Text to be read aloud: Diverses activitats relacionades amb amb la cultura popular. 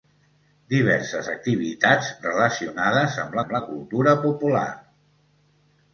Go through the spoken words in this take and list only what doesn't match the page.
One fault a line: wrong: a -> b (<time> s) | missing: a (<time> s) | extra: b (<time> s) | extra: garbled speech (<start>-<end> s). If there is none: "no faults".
no faults